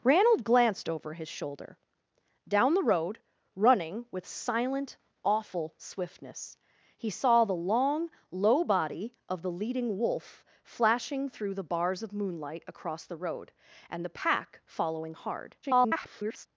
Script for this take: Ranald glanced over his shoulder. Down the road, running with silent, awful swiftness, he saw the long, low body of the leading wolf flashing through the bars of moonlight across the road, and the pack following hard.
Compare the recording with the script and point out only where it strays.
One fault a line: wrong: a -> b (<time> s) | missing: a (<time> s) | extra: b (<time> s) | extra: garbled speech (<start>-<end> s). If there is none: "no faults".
extra: garbled speech (15.6-16.5 s)